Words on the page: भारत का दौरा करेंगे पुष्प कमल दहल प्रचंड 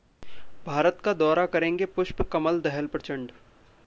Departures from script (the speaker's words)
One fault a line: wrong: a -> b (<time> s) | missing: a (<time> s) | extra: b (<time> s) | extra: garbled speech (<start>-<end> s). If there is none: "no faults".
no faults